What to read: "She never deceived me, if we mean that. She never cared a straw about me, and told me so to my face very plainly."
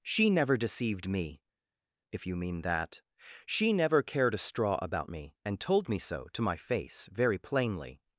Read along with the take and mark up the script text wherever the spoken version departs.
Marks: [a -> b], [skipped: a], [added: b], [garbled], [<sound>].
"She never deceived me, if [we -> you] mean that. She never cared a straw about me, and told me so to my face very plainly."